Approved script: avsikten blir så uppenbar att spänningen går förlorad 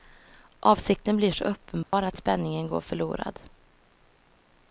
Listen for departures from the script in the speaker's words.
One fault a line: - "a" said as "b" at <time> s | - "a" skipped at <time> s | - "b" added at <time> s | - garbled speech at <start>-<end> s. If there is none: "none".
none